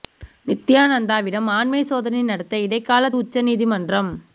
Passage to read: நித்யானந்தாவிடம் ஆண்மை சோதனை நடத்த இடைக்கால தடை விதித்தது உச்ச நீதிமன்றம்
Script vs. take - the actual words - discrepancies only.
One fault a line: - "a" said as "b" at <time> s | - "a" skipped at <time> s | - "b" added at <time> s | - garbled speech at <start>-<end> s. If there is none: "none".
- "தடை விதித்தது" skipped at 3.1 s